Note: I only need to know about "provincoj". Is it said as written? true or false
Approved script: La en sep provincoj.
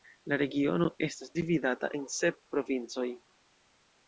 true